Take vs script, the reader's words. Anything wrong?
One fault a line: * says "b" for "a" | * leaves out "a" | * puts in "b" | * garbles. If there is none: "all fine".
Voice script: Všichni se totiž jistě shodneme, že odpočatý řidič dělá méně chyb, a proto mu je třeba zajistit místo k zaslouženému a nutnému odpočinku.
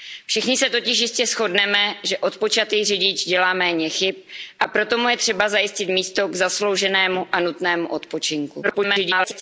* garbles